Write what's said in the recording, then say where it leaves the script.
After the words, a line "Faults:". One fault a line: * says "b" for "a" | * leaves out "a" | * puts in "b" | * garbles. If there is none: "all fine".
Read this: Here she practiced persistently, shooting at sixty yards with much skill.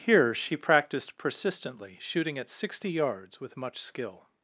Here she practiced persistently, shooting at sixty yards with much skill.
Faults:
all fine